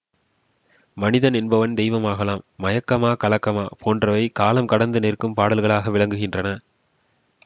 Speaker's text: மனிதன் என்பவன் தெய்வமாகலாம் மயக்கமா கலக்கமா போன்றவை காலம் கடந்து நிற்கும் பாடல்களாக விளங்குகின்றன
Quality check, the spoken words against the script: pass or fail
pass